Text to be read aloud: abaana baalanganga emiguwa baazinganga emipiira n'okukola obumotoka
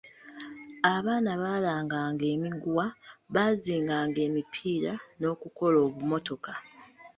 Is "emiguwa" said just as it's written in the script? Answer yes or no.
yes